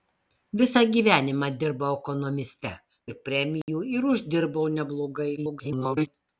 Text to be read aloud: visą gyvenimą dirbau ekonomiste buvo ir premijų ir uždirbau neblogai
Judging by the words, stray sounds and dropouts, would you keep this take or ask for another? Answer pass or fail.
fail